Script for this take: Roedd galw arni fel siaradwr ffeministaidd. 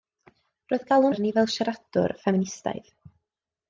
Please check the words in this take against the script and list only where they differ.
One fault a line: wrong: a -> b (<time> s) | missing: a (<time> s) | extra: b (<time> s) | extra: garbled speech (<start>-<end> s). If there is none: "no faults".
no faults